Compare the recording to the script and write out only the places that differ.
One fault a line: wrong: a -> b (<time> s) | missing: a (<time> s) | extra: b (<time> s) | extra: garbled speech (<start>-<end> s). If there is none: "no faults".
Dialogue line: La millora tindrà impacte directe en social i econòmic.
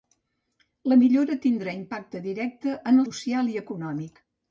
no faults